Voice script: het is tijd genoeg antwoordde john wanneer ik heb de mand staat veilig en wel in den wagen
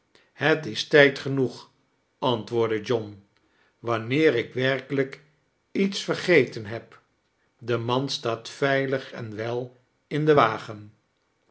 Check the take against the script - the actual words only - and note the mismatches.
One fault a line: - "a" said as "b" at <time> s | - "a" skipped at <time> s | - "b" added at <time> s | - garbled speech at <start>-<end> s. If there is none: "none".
- "werkelijk iets vergeten" added at 4.5 s